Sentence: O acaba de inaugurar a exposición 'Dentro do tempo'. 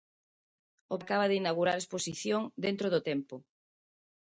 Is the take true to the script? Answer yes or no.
yes